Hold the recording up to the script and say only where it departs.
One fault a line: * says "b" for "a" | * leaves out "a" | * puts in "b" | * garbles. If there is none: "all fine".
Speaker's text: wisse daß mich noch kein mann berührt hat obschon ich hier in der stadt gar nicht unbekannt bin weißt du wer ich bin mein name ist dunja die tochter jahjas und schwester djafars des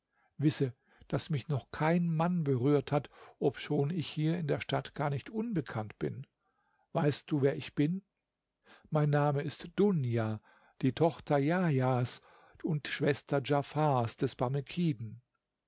all fine